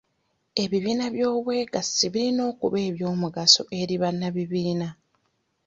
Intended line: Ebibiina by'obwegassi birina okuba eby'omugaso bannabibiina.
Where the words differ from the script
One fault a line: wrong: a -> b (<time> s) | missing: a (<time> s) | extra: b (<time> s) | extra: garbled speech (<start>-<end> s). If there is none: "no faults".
extra: eri (3.8 s)